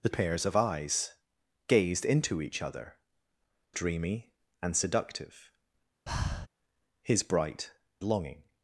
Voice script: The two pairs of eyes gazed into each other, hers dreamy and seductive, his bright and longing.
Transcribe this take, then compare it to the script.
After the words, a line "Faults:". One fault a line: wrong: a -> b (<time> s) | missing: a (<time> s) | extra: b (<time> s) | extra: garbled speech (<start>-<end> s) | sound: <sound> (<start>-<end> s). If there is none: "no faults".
The pairs of eyes gazed into each other, dreamy and seductive, his bright longing.
Faults:
missing: two (0.1 s)
missing: hers (3.0 s)
sound: breath (6.1-6.5 s)
missing: and (7.7 s)